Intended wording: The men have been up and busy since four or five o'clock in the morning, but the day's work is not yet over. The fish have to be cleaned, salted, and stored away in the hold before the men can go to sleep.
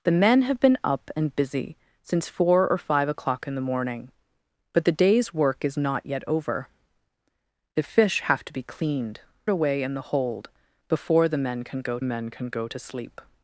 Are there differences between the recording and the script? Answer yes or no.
yes